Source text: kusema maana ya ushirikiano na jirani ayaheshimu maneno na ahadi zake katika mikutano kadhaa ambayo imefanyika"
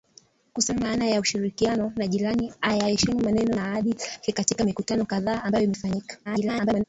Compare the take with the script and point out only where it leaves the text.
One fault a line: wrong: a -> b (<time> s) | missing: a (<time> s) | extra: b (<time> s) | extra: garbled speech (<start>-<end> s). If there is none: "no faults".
extra: garbled speech (6.2-6.8 s)